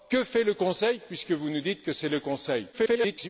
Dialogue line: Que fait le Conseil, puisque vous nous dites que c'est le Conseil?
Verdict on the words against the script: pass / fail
fail